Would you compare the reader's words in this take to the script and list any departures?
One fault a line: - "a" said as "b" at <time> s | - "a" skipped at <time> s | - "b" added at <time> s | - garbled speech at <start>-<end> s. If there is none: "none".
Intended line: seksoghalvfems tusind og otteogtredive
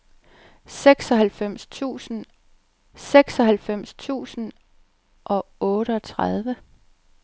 - "seksoghalvfems tusind" added at 2.9 s